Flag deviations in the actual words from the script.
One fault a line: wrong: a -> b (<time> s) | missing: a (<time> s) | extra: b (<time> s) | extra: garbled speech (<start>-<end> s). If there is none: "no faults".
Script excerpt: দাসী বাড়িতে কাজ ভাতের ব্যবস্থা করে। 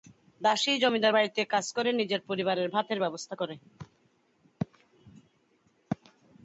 extra: জমিদার (0.8 s)
extra: করে নিজের পরিবারের (1.8 s)